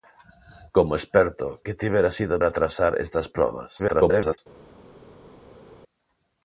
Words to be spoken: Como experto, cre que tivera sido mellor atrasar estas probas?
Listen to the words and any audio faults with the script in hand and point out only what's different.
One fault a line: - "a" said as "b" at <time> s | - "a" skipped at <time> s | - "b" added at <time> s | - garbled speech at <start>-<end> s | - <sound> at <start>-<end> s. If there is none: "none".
- "cre" skipped at 1.5 s
- "mellor" skipped at 2.3 s
- garbled speech at 3.8-4.4 s